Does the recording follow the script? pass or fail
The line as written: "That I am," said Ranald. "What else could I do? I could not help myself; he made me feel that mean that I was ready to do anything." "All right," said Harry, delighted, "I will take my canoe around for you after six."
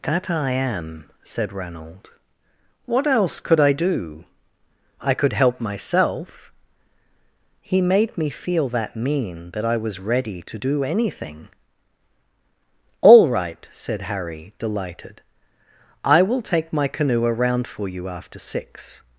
fail